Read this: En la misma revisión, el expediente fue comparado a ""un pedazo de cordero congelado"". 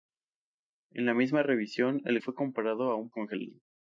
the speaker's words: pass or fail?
fail